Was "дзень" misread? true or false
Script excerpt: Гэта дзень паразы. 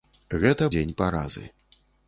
false